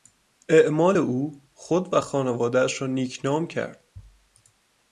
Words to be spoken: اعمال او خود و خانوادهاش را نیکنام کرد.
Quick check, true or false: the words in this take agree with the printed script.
true